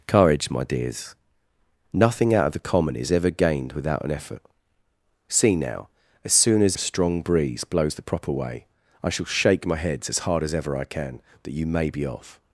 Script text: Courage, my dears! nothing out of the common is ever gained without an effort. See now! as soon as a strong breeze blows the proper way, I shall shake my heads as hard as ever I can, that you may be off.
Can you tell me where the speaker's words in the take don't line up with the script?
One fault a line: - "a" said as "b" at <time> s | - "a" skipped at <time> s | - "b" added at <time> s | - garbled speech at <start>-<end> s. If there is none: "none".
none